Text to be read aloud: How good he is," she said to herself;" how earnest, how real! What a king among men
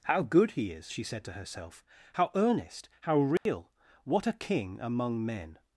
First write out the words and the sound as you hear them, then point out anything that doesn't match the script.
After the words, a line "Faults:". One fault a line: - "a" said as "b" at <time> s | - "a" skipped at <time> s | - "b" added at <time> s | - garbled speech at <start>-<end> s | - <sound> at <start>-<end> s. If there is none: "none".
How good he is," she said to herself;" how earnest, how real! What a king among men
Faults:
- dropout at 3.4-3.5 s